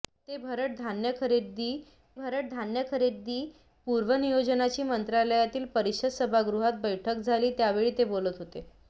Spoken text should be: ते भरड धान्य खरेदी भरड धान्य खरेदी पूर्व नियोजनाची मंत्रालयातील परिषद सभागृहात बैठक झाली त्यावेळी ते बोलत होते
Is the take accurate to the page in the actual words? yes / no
yes